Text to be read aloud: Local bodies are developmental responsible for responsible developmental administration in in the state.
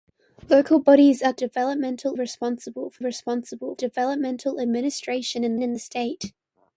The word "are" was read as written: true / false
true